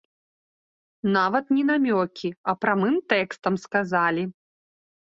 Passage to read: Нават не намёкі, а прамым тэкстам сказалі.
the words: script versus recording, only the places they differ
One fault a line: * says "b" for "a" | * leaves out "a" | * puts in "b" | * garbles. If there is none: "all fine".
all fine